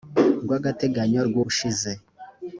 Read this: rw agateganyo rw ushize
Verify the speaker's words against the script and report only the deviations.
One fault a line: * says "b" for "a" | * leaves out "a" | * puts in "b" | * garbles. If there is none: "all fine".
all fine